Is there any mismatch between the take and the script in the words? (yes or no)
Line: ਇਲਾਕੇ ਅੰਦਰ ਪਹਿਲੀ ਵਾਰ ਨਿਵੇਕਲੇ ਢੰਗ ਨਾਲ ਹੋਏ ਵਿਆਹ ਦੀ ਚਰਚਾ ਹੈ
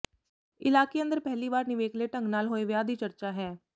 no